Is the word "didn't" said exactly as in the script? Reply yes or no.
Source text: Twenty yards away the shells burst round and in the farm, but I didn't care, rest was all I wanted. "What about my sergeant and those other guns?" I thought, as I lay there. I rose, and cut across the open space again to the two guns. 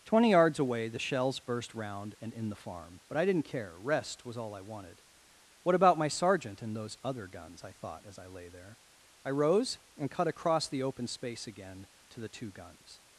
yes